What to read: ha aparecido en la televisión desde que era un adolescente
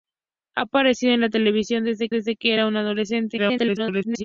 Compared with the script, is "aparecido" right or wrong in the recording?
right